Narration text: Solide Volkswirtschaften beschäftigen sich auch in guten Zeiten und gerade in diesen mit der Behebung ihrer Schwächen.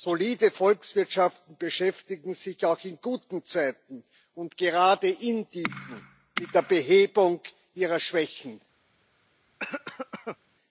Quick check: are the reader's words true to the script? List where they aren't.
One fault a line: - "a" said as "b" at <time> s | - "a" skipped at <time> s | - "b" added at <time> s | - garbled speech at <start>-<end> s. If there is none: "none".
none